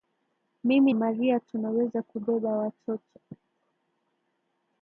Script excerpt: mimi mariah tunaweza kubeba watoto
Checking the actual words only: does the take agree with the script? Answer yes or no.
yes